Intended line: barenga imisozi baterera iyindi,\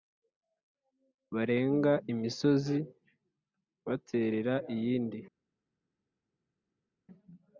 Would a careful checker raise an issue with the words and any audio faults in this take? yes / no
no